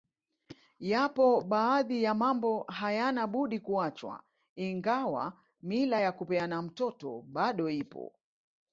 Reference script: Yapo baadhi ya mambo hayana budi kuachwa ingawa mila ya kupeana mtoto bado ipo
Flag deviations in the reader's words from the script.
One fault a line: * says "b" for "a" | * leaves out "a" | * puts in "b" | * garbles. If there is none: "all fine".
all fine